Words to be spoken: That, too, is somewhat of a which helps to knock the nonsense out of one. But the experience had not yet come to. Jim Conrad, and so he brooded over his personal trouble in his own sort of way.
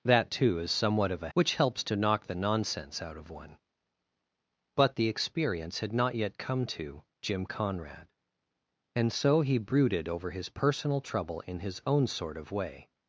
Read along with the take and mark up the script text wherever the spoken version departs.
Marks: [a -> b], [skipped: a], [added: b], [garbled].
That, too, is somewhat of a which helps to knock the nonsense out of one. But the experience had not yet come to. Jim Conrad, and so he brooded over his personal trouble in his own sort of way.